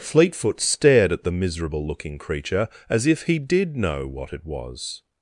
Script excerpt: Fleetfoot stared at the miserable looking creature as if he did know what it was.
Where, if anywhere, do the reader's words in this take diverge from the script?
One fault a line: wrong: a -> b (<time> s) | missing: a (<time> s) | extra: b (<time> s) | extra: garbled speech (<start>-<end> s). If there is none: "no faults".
no faults